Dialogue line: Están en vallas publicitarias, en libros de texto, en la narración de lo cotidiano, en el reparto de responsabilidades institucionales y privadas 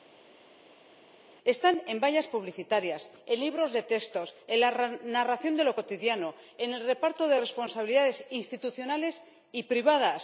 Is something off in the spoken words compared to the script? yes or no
no